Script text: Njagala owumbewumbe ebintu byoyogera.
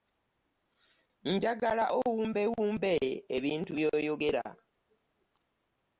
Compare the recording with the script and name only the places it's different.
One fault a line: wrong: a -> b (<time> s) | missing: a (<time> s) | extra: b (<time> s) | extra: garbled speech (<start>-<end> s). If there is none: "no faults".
no faults